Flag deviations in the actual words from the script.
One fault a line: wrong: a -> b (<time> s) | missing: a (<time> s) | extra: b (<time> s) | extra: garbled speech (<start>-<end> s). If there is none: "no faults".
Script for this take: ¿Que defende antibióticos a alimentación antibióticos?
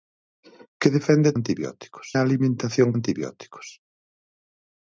no faults